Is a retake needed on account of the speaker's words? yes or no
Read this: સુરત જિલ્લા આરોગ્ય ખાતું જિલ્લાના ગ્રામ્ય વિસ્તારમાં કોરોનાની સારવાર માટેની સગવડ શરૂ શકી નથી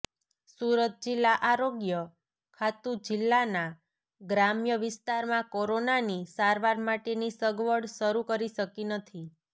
yes